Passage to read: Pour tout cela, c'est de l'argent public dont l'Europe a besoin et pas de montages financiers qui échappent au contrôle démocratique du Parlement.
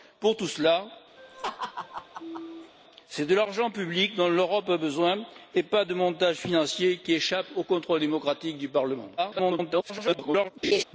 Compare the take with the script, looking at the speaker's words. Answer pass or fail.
fail